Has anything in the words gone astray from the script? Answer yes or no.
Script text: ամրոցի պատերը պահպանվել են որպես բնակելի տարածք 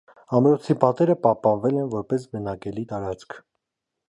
no